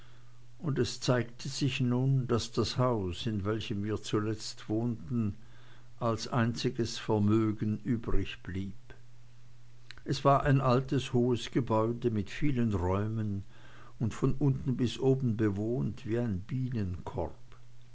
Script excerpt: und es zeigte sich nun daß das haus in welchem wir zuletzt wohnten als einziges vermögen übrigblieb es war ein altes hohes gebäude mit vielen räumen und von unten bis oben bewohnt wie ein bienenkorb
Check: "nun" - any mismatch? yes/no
no